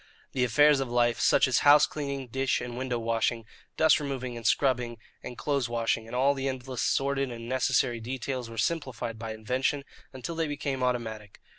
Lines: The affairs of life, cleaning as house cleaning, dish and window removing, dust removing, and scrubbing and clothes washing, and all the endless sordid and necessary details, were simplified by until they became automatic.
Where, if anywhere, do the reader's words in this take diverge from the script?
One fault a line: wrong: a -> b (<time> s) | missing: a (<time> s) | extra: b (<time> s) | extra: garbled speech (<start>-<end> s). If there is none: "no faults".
wrong: cleaning -> such (1.2 s)
wrong: removing -> washing (3.0 s)
extra: invention (9.3 s)